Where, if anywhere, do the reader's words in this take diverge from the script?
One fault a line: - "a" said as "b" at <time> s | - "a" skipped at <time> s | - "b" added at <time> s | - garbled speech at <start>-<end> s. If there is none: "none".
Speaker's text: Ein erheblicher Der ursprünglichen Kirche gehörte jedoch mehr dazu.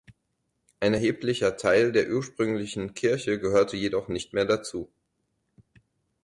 - "Teil" added at 1.6 s
- "nicht" added at 4.1 s